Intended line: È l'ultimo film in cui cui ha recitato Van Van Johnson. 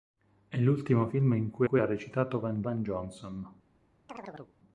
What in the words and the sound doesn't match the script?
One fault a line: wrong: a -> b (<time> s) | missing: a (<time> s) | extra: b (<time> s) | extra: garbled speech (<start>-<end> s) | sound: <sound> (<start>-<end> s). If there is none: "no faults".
sound: chirp (4.1-4.5 s)